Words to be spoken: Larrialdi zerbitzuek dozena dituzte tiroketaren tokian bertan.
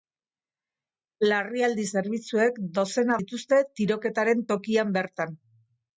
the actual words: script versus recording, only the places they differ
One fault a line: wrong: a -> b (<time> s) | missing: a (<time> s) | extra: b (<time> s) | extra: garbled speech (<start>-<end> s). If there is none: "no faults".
no faults